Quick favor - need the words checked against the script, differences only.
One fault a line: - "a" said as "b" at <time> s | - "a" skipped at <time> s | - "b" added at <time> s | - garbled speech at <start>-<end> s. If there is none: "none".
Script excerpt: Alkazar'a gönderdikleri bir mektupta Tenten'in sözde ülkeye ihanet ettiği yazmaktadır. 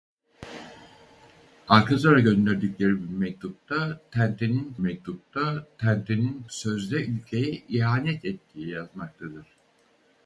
- "mektupta Tenten'in" added at 4.8 s